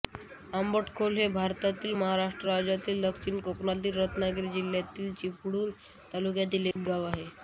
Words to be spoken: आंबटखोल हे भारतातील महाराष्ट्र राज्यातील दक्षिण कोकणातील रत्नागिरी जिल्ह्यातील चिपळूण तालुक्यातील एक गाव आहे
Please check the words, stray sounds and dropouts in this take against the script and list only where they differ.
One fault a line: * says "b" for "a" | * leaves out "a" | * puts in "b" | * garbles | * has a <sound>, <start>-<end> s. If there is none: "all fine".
* has a dropout, 6.7-6.8 s